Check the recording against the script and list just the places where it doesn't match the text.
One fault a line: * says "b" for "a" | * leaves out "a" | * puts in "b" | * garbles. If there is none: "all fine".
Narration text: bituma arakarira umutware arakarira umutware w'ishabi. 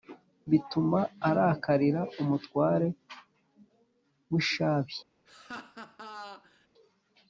* leaves out "arakarira umutware"